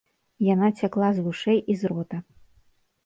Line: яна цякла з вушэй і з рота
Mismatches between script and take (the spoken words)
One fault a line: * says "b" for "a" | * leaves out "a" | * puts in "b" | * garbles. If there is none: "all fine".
all fine